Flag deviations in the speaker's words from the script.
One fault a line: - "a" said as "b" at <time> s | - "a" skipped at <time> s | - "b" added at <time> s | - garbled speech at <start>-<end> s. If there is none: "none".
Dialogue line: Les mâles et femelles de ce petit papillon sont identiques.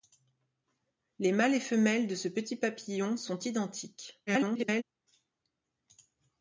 - garbled speech at 4.3-4.8 s